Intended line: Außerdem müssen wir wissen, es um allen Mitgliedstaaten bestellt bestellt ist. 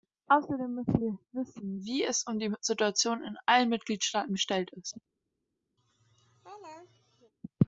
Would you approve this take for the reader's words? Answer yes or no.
no